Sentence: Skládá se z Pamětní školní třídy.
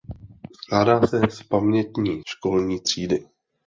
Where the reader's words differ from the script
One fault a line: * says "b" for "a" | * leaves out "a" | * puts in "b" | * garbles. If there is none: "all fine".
all fine